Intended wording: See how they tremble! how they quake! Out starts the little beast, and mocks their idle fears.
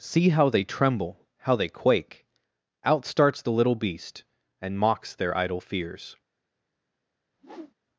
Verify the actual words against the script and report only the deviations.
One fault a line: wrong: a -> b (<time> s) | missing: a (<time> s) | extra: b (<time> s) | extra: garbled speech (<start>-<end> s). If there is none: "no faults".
no faults